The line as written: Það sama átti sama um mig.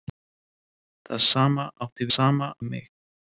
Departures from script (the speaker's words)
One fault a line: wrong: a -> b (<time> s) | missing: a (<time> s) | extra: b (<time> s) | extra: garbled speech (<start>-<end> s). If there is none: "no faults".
no faults